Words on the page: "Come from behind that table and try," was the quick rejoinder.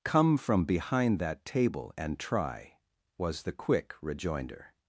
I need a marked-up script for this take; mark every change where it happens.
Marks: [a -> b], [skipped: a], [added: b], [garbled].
"Come from behind that table and try," was the quick rejoinder.